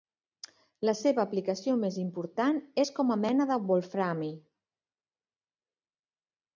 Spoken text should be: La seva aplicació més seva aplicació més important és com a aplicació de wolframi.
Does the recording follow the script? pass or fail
fail